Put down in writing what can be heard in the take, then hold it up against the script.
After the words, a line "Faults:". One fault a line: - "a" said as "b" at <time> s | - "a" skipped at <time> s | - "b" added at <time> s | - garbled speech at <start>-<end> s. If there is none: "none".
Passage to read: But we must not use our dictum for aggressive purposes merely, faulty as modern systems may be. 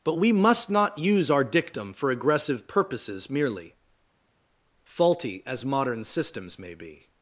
But we must not use our dictum for aggressive purposes merely, faulty as modern systems may be.
Faults:
none